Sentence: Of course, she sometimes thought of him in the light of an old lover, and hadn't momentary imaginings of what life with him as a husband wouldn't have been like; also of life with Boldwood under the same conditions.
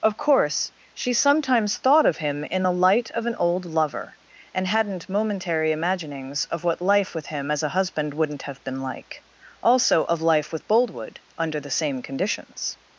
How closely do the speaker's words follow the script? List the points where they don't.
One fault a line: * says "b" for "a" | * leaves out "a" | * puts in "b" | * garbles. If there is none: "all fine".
all fine